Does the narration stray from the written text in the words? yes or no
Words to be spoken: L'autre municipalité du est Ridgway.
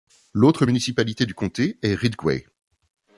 yes